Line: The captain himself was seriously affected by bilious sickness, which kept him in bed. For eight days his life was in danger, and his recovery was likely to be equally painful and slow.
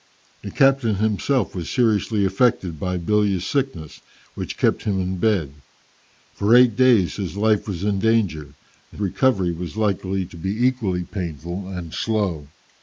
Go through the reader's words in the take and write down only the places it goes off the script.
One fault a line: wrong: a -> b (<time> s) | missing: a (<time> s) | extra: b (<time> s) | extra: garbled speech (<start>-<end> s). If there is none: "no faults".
missing: his (9.0 s)